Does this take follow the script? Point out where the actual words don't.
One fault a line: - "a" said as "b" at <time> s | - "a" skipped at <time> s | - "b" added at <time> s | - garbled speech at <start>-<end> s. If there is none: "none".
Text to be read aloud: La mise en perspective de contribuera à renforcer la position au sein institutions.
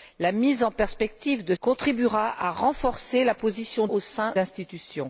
none